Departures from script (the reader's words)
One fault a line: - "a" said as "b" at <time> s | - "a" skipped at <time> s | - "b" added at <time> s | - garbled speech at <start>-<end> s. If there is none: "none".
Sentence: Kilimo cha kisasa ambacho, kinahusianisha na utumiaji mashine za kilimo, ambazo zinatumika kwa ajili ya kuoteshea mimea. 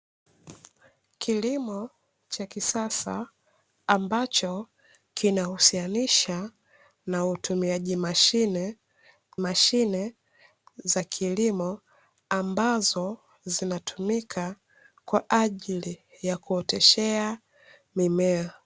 - "mashine" added at 9.4 s